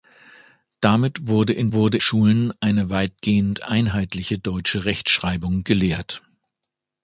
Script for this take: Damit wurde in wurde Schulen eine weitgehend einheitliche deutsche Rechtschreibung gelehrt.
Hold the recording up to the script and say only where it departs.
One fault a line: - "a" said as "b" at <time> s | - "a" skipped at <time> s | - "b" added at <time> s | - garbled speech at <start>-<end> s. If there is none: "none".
none